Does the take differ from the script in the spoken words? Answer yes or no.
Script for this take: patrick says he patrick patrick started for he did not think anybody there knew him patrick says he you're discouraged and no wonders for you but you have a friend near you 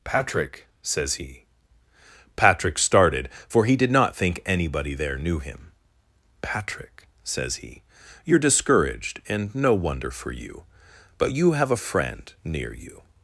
yes